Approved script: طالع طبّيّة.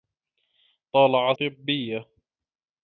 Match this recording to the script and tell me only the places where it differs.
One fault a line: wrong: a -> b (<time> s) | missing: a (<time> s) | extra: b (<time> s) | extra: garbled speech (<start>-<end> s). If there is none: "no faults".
no faults